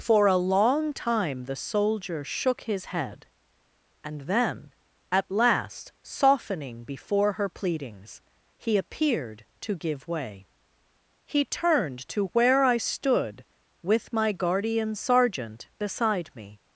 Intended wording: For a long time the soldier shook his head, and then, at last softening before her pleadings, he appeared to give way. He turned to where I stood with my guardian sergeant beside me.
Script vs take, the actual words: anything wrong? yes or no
no